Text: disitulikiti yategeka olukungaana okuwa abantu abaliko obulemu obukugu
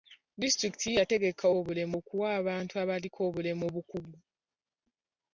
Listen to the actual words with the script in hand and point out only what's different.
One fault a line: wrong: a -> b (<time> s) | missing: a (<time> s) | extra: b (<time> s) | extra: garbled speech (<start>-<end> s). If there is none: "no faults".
wrong: olukungaana -> obulemu (1.6 s)